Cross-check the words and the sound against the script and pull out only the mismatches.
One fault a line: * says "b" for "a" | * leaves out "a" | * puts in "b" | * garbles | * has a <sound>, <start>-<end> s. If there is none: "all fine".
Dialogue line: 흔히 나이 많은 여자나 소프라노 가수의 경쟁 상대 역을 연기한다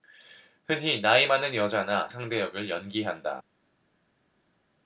* leaves out "소프라노 가수의 경쟁"